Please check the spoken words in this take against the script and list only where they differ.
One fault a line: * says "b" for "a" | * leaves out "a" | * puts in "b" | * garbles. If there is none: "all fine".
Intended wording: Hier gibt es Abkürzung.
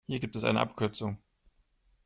* puts in "eine"